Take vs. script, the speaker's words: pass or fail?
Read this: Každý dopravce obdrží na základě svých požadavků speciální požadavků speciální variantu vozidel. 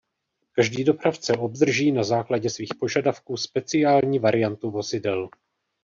fail